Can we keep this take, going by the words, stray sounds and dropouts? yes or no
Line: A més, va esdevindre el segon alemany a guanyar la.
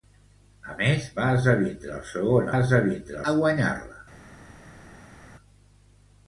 no